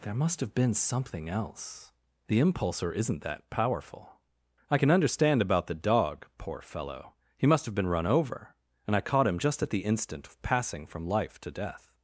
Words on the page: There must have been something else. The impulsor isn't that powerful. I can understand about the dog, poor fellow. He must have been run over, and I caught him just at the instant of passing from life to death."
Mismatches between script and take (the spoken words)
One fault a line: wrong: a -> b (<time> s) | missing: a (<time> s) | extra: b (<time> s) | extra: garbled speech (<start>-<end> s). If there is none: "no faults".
no faults